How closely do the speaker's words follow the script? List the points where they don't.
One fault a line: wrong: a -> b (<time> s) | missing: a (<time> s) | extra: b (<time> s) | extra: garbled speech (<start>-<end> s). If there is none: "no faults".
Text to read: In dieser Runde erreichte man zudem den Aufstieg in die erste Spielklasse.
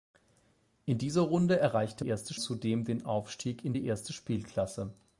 wrong: man -> erste (2.0 s)